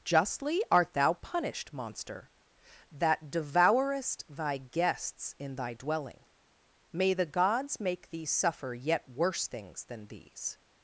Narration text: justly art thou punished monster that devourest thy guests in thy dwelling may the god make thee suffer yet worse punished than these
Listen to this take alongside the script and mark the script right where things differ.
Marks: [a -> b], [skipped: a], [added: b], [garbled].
justly art thou punished monster that devourest thy guests in thy dwelling may the [god -> gods] make thee suffer yet worse [punished -> things] than these